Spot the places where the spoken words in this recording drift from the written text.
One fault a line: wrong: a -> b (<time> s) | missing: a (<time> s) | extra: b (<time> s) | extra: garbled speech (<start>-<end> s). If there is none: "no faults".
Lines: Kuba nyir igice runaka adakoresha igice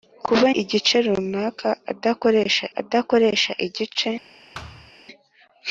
missing: nyir (0.5 s)
extra: adakoresha (2.8 s)